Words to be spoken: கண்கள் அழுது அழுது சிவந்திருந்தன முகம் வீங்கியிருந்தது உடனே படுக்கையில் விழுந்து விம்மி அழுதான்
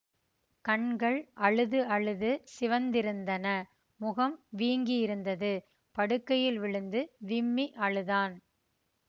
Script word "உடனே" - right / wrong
wrong